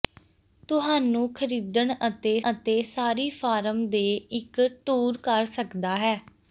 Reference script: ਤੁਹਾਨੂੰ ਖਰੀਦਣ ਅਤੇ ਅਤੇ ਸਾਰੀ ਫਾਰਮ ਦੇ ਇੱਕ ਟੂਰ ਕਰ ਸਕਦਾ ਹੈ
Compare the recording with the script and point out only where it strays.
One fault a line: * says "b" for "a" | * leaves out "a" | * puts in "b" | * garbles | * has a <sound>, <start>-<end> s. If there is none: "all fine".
all fine